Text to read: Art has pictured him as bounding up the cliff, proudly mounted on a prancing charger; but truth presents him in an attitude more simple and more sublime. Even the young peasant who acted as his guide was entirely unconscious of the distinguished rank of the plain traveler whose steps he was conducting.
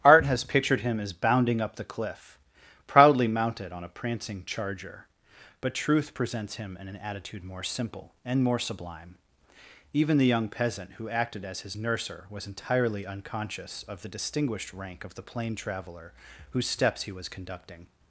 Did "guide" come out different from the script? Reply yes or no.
yes